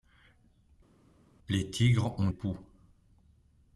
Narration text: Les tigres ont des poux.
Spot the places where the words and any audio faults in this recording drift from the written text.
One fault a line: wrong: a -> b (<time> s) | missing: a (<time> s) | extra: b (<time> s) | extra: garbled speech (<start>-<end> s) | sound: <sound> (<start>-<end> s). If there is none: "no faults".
missing: des (2.3 s)